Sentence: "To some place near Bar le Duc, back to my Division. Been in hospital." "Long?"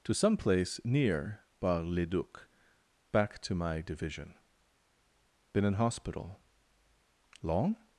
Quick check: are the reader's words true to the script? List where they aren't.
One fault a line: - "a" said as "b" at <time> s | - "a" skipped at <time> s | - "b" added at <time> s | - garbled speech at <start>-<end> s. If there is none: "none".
none